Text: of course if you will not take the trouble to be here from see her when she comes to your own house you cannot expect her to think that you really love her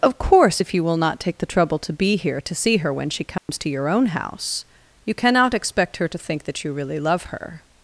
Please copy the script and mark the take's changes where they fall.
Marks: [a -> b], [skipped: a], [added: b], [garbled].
of course if you will not take the trouble to be here [from -> to] see her when she comes to your own house you cannot expect her to think that you really love her